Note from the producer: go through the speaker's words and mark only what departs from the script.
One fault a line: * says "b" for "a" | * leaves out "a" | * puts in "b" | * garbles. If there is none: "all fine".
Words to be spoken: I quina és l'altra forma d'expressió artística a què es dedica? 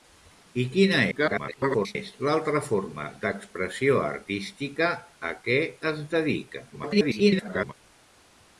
* garbles
* garbles